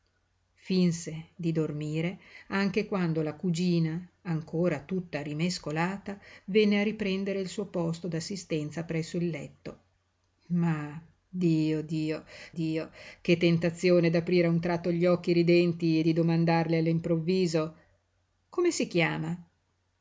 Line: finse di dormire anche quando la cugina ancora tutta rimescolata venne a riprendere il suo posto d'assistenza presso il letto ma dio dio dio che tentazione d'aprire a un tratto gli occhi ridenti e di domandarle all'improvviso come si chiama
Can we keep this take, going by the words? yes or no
yes